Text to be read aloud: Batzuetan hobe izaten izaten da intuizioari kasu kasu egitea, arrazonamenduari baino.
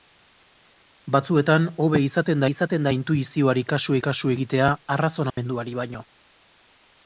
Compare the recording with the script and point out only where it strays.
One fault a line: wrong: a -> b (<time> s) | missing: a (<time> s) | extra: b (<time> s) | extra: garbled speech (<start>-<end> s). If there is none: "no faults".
no faults